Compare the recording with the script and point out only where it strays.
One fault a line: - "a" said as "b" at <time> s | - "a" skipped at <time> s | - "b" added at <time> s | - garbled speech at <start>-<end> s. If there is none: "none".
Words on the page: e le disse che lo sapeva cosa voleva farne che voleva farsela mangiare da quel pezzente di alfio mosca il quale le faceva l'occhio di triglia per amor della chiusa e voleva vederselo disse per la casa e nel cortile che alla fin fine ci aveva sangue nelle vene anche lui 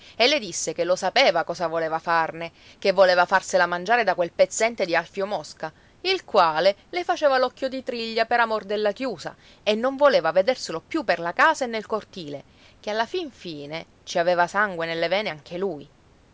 - "non" added at 9.8 s
- "disse" said as "più" at 10.8 s